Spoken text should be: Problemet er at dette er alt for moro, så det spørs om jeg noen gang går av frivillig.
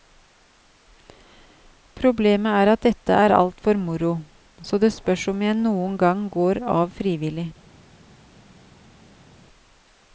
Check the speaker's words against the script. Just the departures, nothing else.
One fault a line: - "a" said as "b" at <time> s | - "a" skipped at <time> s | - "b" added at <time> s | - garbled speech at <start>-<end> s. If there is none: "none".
none